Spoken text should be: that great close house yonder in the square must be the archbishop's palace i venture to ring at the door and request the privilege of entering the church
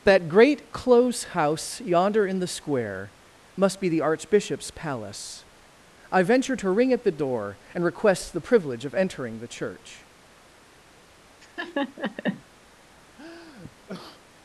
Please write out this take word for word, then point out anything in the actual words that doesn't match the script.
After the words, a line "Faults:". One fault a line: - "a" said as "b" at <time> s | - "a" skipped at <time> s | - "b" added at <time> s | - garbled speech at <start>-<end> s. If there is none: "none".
that great close house yonder in the square must be the archbishop's palace i venture to ring at the door and request the privilege of entering the church
Faults:
none